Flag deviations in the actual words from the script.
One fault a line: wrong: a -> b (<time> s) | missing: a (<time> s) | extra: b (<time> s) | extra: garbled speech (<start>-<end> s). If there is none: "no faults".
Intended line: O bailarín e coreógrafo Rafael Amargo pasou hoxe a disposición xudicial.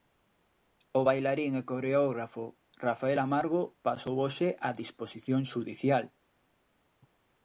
no faults